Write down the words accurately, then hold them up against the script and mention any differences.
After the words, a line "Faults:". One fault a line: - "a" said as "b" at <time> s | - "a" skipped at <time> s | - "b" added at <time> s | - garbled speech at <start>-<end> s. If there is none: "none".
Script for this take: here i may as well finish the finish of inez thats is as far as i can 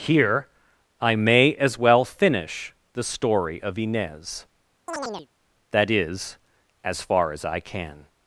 here i may as well finish the story of inez that is as far as i can
Faults:
- "finish" said as "story" at 3.0 s
- "thats" said as "that" at 5.7 s